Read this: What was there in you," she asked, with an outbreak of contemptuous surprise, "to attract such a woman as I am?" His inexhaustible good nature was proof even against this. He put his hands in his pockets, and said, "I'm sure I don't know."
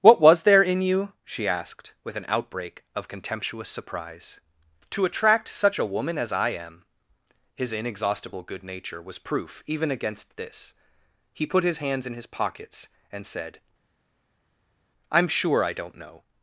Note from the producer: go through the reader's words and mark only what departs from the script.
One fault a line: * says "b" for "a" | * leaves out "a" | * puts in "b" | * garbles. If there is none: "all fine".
all fine